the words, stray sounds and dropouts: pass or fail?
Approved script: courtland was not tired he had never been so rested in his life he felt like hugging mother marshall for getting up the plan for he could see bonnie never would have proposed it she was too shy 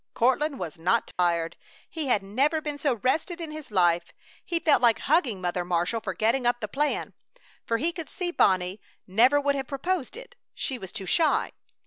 fail